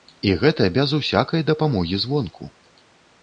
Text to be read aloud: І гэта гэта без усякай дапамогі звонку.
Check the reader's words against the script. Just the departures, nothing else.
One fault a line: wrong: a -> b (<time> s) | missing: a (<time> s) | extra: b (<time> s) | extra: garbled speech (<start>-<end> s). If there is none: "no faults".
missing: гэта (0.7 s)